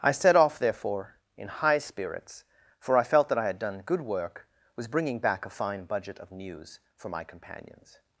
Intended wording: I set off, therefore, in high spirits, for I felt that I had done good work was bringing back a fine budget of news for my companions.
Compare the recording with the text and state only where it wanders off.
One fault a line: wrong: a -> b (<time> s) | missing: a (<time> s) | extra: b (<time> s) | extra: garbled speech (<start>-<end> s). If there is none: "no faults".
no faults